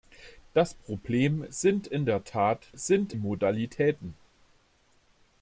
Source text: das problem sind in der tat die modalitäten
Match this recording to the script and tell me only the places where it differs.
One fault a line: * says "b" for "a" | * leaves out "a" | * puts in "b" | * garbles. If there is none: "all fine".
* says "sind" for "die"